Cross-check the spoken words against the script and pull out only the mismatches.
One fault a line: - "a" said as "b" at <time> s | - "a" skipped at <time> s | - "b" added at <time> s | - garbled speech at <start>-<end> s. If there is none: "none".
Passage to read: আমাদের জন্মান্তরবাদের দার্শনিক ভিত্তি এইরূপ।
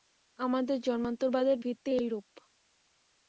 - "দার্শনিক" skipped at 1.6 s